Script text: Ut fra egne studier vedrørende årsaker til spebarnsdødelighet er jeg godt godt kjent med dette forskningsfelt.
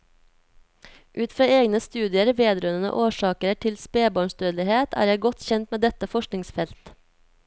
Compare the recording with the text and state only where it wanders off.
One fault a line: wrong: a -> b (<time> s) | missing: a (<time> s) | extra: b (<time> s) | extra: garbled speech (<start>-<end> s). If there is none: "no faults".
missing: godt (5.5 s)